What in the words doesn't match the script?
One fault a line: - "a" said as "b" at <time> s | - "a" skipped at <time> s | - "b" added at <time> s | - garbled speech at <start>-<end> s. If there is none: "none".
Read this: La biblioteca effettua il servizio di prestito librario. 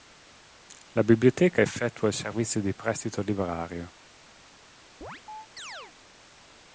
none